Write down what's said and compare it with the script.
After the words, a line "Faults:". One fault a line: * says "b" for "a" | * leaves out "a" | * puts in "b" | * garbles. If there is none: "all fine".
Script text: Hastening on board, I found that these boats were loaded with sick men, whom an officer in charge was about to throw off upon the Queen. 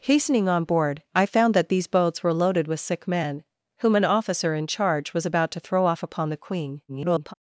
Hastening on board, I found that these boats were loaded with sick men, whom an officer in charge was about to throw off upon the Queen. [garbled]
Faults:
* garbles